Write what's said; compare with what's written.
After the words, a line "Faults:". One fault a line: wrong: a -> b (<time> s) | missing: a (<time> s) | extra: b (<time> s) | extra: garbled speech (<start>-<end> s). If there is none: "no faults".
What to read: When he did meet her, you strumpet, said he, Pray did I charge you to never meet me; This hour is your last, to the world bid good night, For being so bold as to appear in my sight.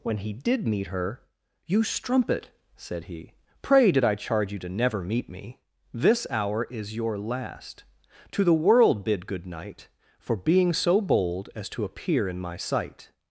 When he did meet her, you strumpet, said he, Pray did I charge you to never meet me; This hour is your last, to the world bid good night, For being so bold as to appear in my sight.
Faults:
no faults